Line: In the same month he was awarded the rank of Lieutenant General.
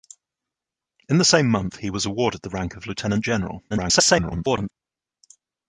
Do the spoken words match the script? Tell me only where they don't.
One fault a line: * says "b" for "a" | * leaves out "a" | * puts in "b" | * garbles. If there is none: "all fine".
* garbles